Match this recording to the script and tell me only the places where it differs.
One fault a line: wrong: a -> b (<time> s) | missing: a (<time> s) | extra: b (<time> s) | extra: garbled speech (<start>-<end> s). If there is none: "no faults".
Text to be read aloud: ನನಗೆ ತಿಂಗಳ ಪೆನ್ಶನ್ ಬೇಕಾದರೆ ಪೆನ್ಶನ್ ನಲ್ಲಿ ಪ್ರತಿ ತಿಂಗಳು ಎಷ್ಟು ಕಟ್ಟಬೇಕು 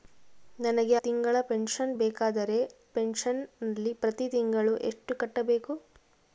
no faults